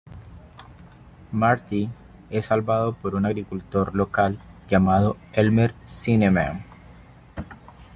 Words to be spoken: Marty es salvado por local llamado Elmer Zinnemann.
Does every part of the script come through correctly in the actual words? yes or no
no